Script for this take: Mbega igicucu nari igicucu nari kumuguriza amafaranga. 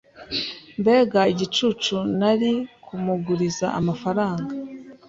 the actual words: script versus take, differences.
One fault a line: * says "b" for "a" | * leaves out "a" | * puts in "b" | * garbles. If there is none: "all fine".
* leaves out "igicucu nari"